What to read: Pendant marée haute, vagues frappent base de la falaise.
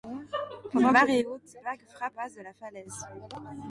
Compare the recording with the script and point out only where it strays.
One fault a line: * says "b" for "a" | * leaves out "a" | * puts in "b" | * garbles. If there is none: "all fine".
all fine